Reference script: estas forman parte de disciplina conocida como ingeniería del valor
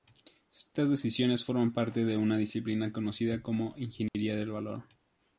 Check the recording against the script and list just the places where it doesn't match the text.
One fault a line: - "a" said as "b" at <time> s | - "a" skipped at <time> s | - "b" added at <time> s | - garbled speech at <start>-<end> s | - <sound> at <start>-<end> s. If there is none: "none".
- "decisiones" added at 0.9 s
- "una" added at 2.2 s
- dropout at 4.1-4.1 s